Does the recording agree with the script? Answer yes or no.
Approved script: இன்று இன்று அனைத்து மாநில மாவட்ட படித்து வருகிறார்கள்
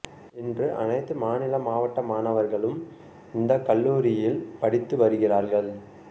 no